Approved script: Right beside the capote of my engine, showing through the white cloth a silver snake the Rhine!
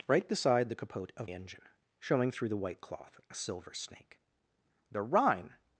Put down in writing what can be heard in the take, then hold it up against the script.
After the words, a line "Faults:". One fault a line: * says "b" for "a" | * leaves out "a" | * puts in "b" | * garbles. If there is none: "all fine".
Right beside the capote of engine, showing through the white cloth a silver snake the Rhine!
Faults:
* leaves out "my"